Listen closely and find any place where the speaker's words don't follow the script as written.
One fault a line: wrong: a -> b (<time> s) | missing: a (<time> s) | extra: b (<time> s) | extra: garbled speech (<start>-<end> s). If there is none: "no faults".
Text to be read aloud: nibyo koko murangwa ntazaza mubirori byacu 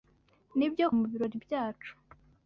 missing: koko murangwa ntazaza (0.8 s)